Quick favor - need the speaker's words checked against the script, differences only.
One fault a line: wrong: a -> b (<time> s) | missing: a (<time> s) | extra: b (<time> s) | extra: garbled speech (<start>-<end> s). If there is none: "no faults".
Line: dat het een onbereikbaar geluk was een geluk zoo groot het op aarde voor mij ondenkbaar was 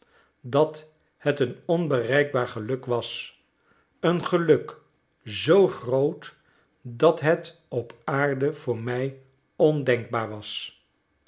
extra: dat (6.8 s)